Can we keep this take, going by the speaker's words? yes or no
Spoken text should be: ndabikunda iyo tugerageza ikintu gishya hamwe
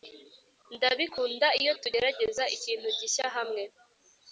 yes